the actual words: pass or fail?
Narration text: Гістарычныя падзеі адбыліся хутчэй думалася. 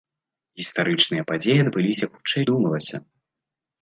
pass